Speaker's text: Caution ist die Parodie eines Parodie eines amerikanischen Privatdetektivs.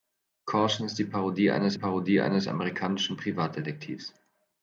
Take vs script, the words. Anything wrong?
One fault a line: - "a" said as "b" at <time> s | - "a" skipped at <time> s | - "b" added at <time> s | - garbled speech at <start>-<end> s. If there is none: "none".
none